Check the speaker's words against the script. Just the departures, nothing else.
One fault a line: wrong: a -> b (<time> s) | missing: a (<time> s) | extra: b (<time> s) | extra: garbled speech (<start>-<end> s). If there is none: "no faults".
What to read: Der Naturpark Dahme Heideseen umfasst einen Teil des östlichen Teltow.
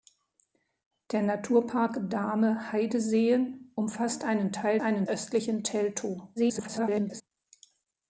wrong: des -> einen (4.8 s)
extra: garbled speech (6.4-7.2 s)